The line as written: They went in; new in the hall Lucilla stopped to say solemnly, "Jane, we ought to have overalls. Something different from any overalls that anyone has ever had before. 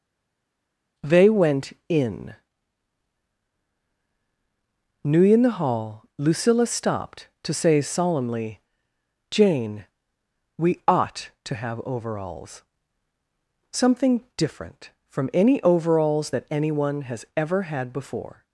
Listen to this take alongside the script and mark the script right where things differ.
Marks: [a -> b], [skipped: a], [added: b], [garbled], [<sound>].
They went in; new in the hall Lucilla stopped to say solemnly, "Jane, we ought to have overalls. Something different from any overalls that anyone has ever had before.